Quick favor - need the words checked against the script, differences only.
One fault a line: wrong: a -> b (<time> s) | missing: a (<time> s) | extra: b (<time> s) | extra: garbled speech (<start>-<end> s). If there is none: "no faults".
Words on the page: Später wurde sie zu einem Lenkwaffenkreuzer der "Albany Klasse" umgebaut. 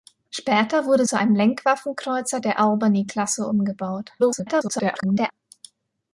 missing: sie (1.1 s)
extra: garbled speech (4.2-5.3 s)